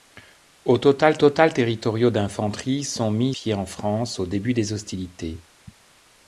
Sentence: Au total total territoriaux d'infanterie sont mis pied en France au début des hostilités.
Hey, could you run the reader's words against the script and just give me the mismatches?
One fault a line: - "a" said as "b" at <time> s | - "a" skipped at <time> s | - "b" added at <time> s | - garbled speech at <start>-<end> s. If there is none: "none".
none